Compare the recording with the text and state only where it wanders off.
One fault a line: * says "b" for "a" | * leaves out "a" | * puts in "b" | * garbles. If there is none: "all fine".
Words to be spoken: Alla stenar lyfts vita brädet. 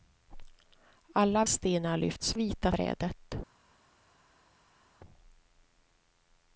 all fine